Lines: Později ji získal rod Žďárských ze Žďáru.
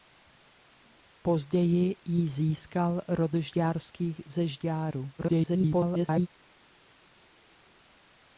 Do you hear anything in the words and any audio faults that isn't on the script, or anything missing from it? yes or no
yes